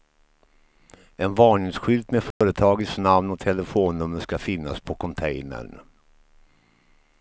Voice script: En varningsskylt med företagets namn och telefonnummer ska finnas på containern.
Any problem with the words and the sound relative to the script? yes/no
yes